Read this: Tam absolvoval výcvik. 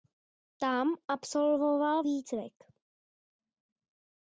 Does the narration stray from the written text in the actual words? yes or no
no